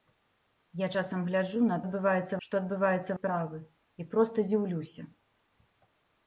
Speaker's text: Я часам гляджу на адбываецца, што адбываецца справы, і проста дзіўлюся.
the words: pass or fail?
pass